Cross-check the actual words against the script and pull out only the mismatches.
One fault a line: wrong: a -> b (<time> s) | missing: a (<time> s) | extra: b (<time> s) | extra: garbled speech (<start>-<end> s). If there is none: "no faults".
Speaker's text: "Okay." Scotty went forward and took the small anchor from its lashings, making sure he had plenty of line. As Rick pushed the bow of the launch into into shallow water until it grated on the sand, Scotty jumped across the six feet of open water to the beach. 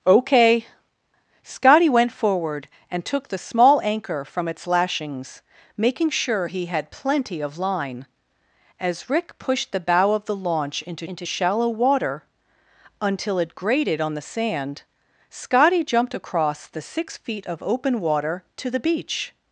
no faults